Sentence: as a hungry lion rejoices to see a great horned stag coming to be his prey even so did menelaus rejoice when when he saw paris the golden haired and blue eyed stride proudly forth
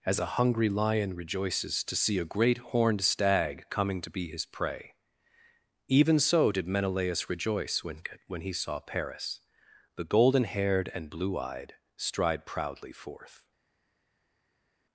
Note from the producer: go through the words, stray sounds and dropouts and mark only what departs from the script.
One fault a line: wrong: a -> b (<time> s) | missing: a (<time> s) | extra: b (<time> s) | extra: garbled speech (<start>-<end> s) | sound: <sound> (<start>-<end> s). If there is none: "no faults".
no faults